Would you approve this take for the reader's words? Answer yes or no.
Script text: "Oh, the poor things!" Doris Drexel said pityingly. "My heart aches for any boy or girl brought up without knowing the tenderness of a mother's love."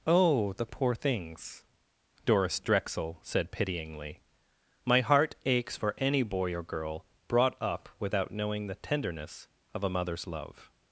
yes